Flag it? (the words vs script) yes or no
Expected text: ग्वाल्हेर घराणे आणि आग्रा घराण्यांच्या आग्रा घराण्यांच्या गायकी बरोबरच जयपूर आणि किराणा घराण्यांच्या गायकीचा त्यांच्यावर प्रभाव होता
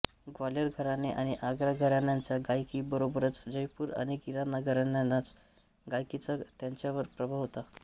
yes